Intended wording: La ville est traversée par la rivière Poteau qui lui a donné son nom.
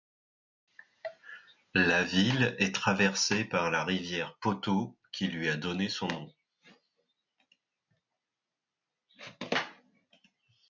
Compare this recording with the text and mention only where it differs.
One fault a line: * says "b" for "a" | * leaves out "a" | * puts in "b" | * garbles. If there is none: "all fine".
all fine